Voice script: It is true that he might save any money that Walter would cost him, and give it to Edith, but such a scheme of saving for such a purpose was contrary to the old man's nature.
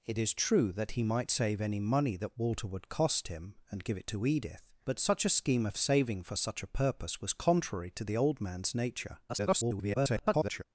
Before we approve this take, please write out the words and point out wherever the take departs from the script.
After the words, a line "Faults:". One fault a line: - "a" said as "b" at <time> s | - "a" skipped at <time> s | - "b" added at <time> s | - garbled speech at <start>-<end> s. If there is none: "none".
It is true that he might save any money that Walter would cost him, and give it to Edith, but such a scheme of saving for such a purpose was contrary to the old man's nature. [garbled]
Faults:
- garbled speech at 9.3-10.6 s